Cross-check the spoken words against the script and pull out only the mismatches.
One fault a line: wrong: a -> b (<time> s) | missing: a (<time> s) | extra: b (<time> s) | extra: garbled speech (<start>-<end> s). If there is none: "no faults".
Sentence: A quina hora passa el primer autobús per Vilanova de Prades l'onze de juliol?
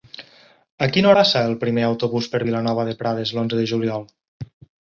missing: hora (1.1 s)